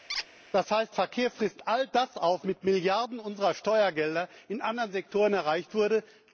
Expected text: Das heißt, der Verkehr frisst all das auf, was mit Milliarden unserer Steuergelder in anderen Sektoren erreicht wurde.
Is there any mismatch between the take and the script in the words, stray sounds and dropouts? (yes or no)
yes